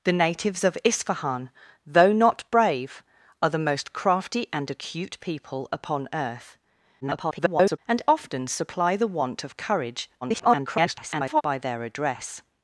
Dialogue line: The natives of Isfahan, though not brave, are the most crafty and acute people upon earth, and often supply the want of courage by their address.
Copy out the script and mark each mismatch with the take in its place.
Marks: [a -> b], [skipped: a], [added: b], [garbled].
The natives of Isfahan, though not brave, are the most crafty and acute people upon earth, [garbled] and often supply the want of courage [garbled] by their address.